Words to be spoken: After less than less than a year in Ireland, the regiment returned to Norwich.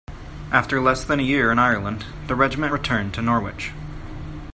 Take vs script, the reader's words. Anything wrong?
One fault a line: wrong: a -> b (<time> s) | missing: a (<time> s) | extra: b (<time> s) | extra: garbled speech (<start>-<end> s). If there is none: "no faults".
missing: less than (1.2 s)